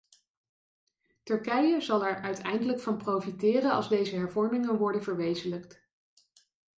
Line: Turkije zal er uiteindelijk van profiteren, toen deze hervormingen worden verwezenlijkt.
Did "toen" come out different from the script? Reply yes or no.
yes